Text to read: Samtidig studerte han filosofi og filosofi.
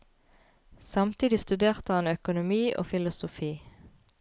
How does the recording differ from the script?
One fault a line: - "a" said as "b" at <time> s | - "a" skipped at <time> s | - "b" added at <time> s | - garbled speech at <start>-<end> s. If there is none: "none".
- "filosofi" said as "økonomi" at 2.1 s